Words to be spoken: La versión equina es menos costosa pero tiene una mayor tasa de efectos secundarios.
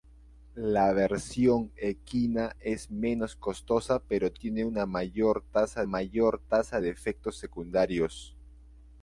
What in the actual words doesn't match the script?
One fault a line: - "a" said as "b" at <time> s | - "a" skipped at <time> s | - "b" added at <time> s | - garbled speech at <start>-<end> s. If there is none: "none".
- "mayor tasa" added at 5.8 s